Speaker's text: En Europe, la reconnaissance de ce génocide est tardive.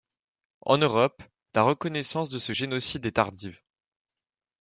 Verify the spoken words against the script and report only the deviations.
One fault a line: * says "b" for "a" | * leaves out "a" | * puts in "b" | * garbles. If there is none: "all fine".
all fine